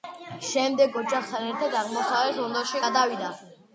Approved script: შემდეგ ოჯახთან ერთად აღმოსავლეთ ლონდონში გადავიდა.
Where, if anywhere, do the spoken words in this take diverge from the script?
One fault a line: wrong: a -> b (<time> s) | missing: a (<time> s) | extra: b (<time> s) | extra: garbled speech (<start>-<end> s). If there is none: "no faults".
no faults